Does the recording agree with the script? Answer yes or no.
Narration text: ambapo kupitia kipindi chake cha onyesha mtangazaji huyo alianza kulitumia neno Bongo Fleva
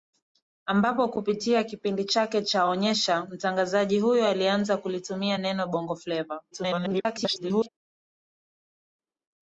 no